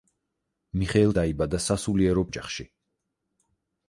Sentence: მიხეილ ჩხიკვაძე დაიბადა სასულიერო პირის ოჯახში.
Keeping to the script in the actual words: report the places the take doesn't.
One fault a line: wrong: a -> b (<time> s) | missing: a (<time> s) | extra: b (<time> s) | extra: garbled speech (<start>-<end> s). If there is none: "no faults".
missing: ჩხიკვაძე (1.1 s)
missing: პირის (2.2 s)